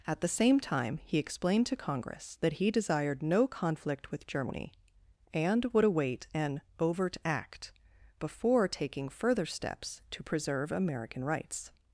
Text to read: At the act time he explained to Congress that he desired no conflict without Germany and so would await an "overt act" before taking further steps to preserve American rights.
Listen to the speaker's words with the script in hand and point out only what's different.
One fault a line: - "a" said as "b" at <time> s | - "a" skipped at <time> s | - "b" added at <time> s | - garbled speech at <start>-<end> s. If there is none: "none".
- "act" said as "same" at 0.3 s
- "without" said as "with" at 4.1 s
- "so" skipped at 5.7 s